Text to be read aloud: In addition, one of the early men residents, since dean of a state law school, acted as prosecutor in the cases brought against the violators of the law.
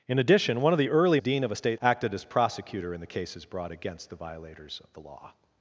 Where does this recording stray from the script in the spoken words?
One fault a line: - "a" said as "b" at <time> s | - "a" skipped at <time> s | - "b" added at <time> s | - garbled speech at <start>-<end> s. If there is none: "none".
- "men residents since" skipped at 1.2 s
- "law school" skipped at 1.8 s